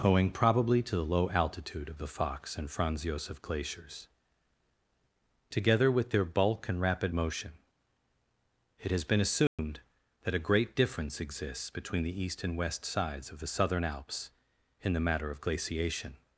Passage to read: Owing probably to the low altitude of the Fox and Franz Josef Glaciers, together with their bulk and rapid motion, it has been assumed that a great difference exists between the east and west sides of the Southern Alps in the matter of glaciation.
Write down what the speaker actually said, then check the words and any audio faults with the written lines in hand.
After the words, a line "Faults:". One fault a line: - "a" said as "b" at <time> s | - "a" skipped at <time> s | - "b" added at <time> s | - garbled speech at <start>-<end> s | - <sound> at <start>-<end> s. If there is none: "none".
Owing probably to the low altitude of the Fox and Franz Josef Glaciers, together with their bulk and rapid motion, it has been assumed that a great difference exists between the east and west sides of the Southern Alps in the matter of glaciation.
Faults:
- dropout at 9.5-9.6 s